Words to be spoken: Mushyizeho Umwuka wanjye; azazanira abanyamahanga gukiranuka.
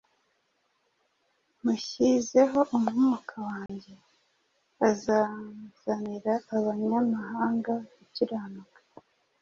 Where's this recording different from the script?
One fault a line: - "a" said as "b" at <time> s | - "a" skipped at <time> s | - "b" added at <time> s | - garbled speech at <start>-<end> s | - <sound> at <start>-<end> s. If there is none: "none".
- dropout at 3.7-3.7 s